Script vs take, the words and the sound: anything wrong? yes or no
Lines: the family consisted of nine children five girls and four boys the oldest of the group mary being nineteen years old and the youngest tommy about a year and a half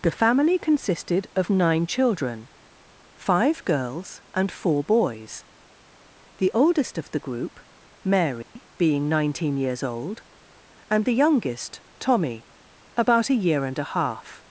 yes